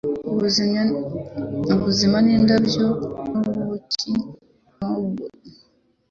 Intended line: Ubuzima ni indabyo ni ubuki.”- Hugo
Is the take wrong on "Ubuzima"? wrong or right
right